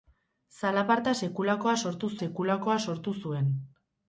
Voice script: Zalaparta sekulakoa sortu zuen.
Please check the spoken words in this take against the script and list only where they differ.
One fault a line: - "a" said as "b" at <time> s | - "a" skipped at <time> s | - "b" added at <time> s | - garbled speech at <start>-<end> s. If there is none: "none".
- "sekulakoa sortu" added at 2.2 s